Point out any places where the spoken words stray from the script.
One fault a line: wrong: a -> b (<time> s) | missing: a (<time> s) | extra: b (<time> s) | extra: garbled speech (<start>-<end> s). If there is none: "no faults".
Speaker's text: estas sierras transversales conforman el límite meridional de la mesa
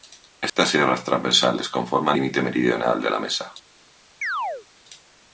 missing: el (2.2 s)